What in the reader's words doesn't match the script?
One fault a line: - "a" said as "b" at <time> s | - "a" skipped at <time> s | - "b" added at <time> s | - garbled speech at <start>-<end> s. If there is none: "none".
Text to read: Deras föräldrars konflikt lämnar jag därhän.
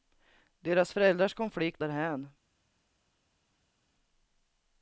- "lämnar jag" skipped at 1.8 s